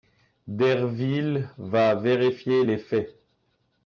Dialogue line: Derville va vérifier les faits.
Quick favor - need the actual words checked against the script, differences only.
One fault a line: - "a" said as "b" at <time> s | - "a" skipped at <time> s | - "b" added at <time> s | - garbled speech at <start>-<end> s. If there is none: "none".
none